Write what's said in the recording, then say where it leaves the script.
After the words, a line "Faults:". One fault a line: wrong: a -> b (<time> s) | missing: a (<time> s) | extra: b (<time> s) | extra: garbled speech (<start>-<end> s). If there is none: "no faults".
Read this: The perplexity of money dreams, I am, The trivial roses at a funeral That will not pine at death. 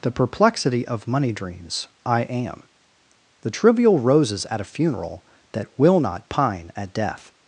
The perplexity of money dreams, I am, The trivial roses at a funeral That will not pine at death.
Faults:
no faults